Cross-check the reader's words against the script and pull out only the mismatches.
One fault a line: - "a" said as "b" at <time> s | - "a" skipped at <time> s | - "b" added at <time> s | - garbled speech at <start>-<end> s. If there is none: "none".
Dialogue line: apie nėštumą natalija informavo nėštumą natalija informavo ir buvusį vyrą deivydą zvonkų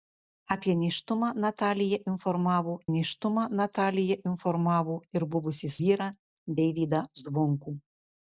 none